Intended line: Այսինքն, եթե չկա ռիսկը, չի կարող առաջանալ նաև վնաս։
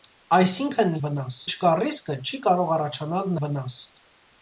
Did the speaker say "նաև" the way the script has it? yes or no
no